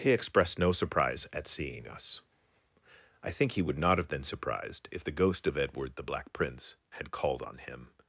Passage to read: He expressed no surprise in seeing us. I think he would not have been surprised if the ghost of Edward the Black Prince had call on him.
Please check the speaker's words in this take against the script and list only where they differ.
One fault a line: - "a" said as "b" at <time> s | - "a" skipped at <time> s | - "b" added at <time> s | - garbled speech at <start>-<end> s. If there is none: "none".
- "in" said as "at" at 1.3 s
- "call" said as "called" at 7.1 s